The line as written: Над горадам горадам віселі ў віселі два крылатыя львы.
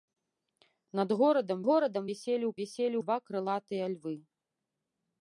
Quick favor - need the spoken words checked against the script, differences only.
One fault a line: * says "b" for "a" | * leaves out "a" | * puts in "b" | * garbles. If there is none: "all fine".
all fine